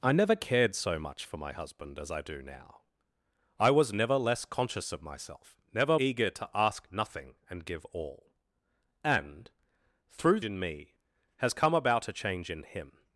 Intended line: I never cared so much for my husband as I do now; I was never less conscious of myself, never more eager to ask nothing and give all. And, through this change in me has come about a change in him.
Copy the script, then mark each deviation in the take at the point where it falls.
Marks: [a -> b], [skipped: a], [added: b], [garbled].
I never cared so much for my husband as I do now; I was never less conscious of myself, never [skipped: more] eager to ask nothing and give all. And, through [skipped: this change] in me has come about a change in him.